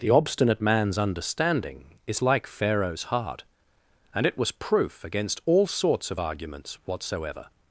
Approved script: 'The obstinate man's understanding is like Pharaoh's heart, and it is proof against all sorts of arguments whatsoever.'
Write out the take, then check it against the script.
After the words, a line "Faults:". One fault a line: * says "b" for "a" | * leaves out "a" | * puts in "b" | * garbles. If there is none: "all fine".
'The obstinate man's understanding is like Pharaoh's heart, and it was proof against all sorts of arguments whatsoever.'
Faults:
* says "was" for "is"